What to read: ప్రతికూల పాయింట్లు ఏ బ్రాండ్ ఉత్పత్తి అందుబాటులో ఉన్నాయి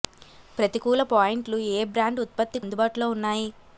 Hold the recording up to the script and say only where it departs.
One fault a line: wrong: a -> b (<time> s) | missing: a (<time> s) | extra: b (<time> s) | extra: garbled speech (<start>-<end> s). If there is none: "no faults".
no faults